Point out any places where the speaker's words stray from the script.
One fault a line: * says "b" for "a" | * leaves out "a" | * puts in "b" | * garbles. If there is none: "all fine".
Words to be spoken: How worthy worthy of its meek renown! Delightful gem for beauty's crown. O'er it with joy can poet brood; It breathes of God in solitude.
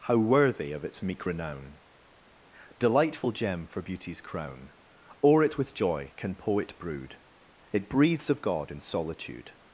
* leaves out "worthy"